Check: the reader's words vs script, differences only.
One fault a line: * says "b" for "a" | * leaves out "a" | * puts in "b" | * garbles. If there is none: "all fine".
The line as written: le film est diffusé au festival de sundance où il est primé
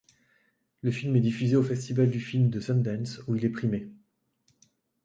* puts in "du film"